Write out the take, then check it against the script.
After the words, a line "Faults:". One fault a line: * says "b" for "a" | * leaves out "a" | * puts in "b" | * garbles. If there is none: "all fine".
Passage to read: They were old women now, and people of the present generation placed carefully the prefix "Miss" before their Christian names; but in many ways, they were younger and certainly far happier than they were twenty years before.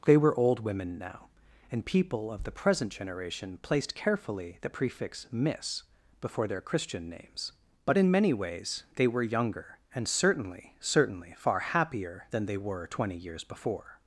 They were old women now, and people of the present generation placed carefully the prefix "Miss" before their Christian names; but in many ways, they were younger and certainly certainly far happier than they were twenty years before.
Faults:
* puts in "certainly"